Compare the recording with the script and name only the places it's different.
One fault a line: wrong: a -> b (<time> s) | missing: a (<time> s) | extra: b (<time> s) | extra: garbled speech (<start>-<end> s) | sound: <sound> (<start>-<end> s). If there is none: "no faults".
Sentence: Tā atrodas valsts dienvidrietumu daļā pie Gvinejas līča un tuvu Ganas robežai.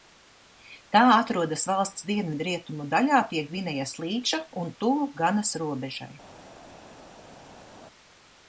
no faults